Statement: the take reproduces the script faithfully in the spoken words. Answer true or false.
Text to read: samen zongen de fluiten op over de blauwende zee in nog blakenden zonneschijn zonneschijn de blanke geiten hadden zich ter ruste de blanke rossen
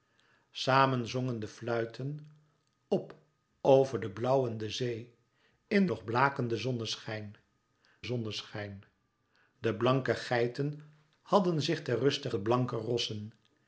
true